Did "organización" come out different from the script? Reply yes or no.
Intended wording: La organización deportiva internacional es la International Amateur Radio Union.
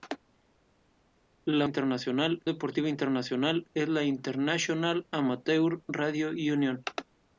yes